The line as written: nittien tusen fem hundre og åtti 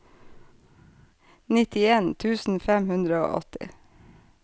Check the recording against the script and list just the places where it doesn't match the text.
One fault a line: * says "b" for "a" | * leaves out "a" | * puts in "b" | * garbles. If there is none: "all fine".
all fine